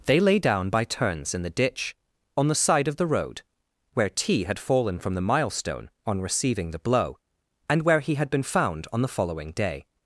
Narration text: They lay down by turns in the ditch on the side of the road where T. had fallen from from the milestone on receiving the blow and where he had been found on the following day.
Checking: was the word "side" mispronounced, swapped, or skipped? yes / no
no